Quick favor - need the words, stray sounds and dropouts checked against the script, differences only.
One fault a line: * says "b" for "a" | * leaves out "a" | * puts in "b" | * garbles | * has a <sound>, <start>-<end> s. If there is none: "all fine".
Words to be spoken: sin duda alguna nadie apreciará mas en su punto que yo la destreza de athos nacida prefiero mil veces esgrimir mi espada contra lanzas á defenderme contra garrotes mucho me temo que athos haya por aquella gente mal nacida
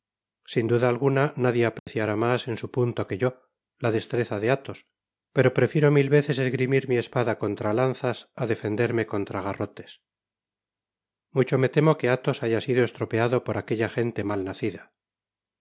* has a dropout, 1.8-1.9 s
* says "pero" for "nacida"
* puts in "sido estropeado"